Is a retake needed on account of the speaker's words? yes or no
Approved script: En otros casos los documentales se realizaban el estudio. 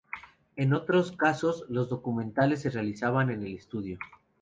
yes